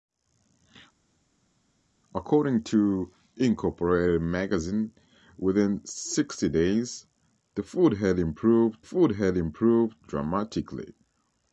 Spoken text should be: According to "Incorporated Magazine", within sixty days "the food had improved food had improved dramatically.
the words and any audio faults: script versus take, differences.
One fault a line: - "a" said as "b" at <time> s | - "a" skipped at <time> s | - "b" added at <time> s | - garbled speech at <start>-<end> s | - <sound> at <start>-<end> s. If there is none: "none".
none